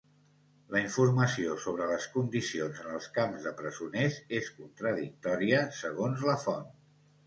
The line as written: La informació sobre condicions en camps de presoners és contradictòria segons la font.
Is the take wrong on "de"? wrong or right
right